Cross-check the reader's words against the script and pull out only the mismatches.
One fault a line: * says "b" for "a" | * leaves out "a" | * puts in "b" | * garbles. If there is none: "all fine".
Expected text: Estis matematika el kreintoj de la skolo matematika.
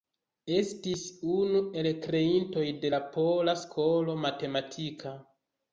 * says "unu" for "matematika"
* puts in "pola"